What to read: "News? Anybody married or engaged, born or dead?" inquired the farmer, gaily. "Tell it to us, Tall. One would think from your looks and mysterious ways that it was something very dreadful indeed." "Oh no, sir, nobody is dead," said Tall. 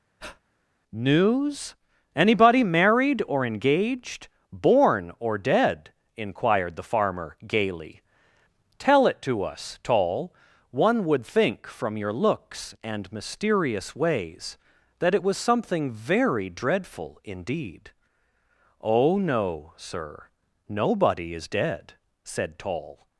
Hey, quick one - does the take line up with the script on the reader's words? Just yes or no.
yes